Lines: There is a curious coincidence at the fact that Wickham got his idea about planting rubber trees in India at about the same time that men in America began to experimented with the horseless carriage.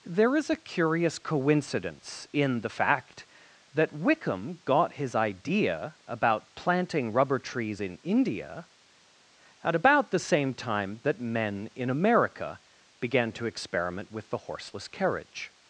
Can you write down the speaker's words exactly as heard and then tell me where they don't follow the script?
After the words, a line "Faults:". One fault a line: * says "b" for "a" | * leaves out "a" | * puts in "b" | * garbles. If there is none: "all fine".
There is a curious coincidence in the fact that Wickham got his idea about planting rubber trees in India at about the same time that men in America began to experiment with the horseless carriage.
Faults:
* says "in" for "at"
* says "experiment" for "experimented"